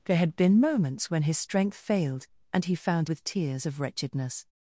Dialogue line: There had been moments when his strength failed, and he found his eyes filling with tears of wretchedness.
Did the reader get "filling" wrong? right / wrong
wrong